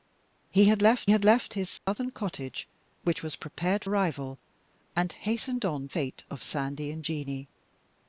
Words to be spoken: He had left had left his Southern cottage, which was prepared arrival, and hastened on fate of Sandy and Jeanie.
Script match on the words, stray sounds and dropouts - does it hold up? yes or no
no